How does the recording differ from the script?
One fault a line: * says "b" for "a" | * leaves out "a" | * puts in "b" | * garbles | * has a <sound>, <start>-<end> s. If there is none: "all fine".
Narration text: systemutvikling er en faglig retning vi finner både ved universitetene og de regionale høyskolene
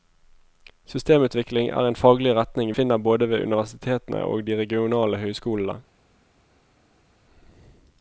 * leaves out "vi"